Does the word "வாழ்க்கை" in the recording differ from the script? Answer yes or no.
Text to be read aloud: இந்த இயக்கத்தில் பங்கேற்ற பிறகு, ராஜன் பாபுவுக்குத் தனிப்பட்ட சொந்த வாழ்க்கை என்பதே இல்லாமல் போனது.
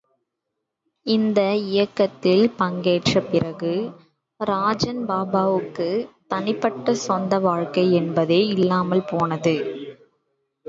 no